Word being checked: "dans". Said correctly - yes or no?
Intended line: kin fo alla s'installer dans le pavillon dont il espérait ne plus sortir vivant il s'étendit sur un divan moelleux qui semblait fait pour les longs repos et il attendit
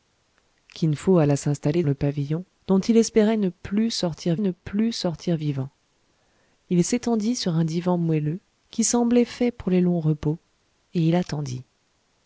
no